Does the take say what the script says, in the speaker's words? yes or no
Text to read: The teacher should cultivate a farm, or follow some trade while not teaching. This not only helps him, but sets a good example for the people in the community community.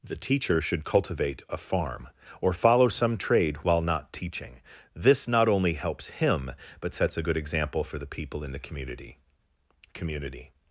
yes